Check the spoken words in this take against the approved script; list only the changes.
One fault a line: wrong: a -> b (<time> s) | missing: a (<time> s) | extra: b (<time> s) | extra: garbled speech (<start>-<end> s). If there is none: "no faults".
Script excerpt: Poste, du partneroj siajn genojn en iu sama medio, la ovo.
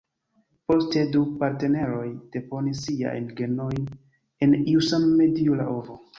extra: deponis (2.4 s)